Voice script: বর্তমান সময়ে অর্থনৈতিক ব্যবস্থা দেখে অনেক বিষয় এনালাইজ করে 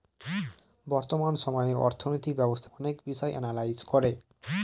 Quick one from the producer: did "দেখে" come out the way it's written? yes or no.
no